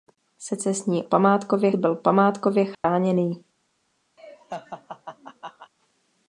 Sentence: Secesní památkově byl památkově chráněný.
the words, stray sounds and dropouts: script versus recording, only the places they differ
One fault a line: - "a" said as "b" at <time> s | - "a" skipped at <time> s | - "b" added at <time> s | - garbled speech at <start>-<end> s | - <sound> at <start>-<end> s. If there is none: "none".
- dropout at 2.7-2.8 s
- laugh at 4.2-5.7 s